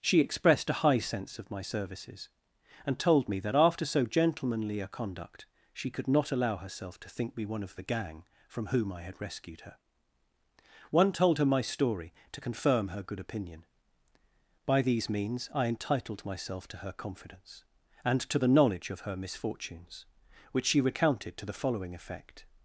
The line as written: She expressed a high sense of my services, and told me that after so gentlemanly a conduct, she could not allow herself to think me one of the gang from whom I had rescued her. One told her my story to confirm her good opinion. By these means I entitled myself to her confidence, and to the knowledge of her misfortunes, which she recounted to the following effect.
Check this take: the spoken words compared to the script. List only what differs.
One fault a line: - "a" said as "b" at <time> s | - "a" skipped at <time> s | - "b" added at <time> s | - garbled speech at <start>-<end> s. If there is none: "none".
none